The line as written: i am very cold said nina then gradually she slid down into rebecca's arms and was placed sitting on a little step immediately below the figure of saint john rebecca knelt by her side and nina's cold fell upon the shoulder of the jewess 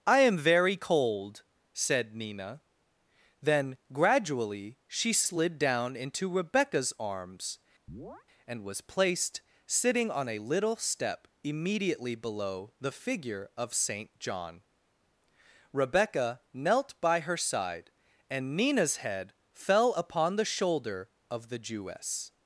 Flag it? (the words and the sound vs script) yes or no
yes